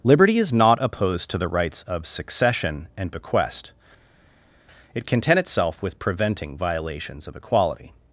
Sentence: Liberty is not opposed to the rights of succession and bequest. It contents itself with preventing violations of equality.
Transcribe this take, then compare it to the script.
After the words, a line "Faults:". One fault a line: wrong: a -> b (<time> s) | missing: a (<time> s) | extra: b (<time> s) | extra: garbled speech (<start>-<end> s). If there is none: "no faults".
Liberty is not opposed to the rights of succession and bequest. It content itself with preventing violations of equality.
Faults:
wrong: contents -> content (5.1 s)